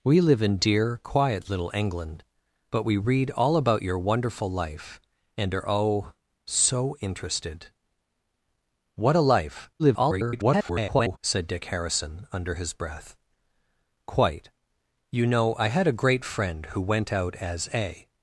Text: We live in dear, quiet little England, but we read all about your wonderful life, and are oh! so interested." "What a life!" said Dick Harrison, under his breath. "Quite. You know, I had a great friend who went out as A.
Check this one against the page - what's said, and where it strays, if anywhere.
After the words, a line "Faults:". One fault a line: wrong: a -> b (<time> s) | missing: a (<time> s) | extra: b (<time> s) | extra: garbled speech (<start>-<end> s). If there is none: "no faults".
We live in dear, quiet little England, but we read all about your wonderful life, and are oh! so interested." "What a life!" [garbled] said Dick Harrison, under his breath. "Quite. You know, I had a great friend who went out as A.
Faults:
extra: garbled speech (9.8-11.2 s)